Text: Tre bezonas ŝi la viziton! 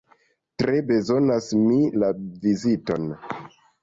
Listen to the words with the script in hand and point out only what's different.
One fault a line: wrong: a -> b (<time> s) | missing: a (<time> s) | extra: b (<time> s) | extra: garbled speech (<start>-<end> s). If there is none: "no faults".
wrong: ŝi -> mi (1.6 s)